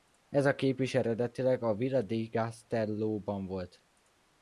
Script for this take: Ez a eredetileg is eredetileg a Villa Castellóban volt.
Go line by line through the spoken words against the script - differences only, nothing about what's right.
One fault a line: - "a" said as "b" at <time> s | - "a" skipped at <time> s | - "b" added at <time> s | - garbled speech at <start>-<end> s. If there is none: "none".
- "eredetileg" said as "kép" at 0.6 s
- "di" added at 2.0 s